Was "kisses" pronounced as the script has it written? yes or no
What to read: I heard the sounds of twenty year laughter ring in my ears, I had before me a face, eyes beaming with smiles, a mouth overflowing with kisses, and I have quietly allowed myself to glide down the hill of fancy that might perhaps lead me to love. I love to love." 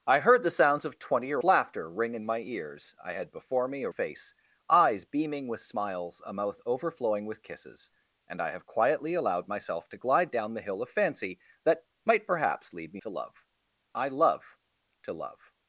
yes